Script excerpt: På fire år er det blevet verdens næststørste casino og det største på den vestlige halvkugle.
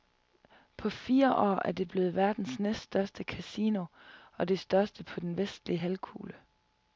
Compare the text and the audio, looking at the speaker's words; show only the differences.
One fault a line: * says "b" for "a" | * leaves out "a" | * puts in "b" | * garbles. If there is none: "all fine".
all fine